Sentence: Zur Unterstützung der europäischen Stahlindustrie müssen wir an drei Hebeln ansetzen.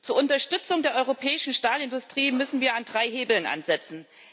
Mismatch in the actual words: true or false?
false